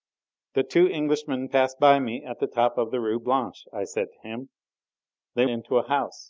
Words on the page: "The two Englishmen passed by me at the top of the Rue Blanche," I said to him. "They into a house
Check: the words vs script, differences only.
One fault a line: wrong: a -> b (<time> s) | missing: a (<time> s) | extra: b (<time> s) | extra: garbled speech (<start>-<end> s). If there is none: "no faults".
no faults